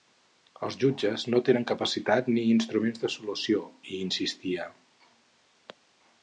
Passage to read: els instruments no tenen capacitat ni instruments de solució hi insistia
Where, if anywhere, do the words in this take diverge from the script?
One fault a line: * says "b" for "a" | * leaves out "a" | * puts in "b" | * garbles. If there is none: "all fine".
* says "jutges" for "instruments"